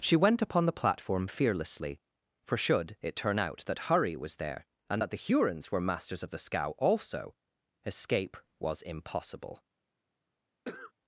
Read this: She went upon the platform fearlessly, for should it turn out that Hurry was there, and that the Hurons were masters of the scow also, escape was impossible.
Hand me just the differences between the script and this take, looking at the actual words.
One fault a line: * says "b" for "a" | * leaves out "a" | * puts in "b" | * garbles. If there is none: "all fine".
all fine